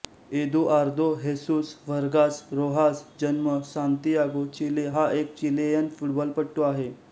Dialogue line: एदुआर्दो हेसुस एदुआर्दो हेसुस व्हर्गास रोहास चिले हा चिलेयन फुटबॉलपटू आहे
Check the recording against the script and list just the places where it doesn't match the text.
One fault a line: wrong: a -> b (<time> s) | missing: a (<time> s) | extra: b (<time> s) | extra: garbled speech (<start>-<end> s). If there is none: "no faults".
wrong: एदुआर्दो हेसुस व्हर्गास रोहास -> व्हर्गास रोहास जन्म सान्तियागो (1.9 s)
extra: एक (5.2 s)